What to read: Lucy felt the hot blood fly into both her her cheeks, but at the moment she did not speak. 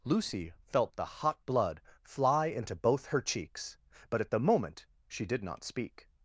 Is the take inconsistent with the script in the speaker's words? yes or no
yes